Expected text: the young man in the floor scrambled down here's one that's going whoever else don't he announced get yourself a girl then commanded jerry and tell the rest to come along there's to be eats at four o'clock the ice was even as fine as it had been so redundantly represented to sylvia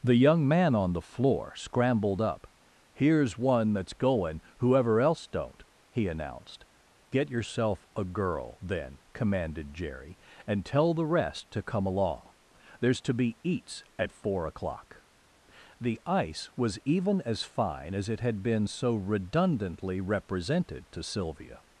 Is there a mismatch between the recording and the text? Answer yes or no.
yes